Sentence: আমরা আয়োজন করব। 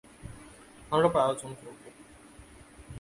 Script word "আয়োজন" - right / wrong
right